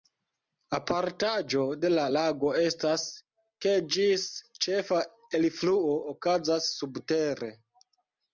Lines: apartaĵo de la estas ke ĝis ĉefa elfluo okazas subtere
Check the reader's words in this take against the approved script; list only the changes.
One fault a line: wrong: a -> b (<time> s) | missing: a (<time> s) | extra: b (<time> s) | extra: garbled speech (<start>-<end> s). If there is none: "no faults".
extra: lago (2.2 s)